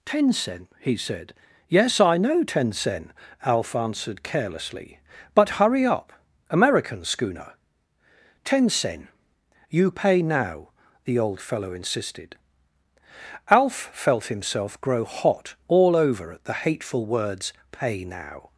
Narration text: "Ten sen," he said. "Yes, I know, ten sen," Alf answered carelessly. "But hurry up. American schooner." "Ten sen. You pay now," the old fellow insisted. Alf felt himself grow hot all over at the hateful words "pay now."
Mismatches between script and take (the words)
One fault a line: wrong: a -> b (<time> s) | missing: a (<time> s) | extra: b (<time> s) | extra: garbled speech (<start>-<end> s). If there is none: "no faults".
no faults